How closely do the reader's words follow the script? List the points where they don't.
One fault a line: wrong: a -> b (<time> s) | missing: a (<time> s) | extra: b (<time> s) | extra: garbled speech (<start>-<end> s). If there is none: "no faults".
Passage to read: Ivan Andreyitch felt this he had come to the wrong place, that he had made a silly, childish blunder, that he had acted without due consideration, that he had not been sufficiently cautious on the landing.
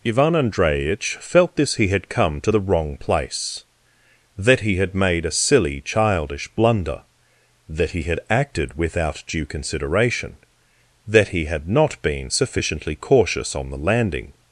no faults